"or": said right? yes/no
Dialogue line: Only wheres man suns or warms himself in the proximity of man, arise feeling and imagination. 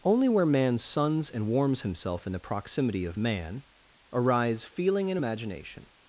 no